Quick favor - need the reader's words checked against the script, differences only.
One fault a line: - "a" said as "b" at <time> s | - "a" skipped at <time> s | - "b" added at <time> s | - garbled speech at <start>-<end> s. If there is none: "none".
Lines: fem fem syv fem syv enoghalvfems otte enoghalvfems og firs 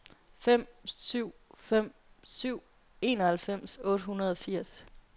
- "fem" skipped at 0.7 s
- "enoghalvfems" said as "hundrede" at 4.0 s